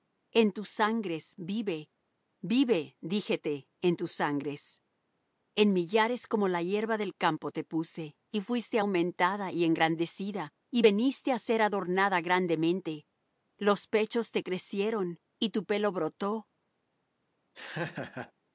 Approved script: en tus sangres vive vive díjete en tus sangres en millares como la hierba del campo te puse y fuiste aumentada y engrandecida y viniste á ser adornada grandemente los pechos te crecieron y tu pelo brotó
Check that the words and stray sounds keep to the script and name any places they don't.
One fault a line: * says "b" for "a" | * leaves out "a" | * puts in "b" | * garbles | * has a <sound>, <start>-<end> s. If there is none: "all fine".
* has a laugh, 17.5-18.3 s